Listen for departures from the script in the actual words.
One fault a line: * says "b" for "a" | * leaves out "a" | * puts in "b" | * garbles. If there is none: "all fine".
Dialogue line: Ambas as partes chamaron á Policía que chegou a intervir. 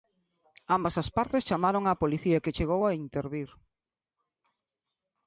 all fine